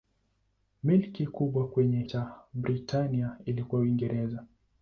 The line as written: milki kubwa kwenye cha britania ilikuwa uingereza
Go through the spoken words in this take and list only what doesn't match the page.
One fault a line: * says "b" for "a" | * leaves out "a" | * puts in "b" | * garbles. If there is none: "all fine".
all fine